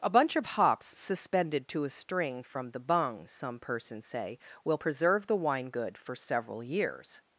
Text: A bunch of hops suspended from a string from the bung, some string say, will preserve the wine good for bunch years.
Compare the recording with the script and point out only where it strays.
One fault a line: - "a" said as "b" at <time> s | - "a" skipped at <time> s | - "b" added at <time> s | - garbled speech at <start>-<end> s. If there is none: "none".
- "from" said as "to" at 1.7 s
- "string" said as "persons" at 3.6 s
- "bunch" said as "several" at 6.2 s